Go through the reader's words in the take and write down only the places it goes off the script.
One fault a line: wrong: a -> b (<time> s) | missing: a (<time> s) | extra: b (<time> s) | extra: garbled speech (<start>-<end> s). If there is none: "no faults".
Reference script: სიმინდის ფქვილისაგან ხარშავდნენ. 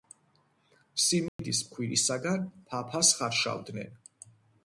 extra: ფაფას (2.7 s)